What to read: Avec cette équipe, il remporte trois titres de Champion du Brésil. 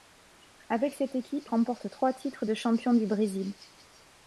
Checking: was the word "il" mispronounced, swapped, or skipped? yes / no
yes